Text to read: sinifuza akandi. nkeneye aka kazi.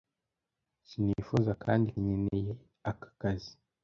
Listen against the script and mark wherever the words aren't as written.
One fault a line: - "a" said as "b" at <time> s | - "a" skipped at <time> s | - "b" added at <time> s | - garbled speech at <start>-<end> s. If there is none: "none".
none